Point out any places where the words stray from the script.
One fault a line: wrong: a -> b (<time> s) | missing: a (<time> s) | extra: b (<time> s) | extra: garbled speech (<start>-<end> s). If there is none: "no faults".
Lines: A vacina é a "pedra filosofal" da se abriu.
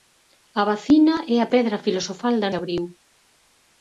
no faults